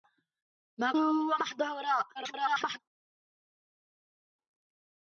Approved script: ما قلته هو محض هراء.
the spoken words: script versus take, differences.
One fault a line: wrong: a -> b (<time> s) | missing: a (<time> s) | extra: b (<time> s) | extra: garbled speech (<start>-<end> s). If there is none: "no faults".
missing: قلته (0.9 s)
extra: garbled speech (2.1-2.8 s)